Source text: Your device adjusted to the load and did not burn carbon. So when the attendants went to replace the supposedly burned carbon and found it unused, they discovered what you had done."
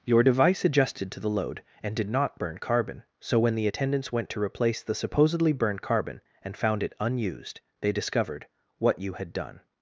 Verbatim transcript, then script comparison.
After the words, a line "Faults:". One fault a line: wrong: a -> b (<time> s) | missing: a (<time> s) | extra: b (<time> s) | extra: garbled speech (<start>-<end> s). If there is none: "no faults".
Your device adjusted to the load and did not burn carbon. So when the attendants went to replace the supposedly burned carbon and found it unused, they discovered what you had done."
Faults:
no faults